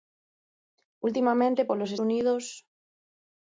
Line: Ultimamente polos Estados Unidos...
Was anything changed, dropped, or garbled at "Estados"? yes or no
yes